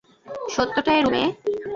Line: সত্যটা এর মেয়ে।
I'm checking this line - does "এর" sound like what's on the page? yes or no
yes